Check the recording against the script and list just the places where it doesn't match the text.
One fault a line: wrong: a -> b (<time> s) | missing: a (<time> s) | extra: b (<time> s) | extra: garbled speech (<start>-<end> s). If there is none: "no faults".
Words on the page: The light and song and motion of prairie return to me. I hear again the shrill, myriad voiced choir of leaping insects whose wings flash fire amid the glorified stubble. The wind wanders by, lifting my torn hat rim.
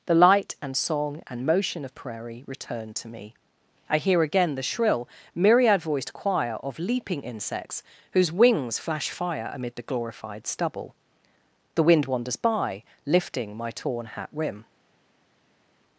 no faults